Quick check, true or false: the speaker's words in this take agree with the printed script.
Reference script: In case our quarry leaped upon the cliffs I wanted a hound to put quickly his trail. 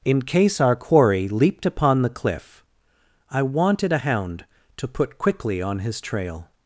false